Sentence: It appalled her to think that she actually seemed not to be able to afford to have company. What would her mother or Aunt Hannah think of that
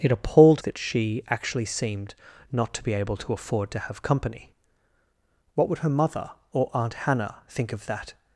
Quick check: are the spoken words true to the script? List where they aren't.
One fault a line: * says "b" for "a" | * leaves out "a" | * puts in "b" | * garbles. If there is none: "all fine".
* leaves out "her to think"